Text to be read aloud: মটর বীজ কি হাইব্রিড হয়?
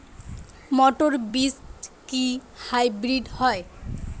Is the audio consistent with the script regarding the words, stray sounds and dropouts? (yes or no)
yes